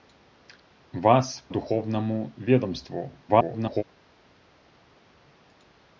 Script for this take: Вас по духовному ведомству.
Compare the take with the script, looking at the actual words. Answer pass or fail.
fail